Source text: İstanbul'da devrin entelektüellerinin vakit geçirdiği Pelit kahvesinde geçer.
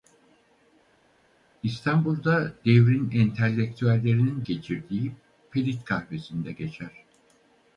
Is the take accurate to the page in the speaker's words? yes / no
no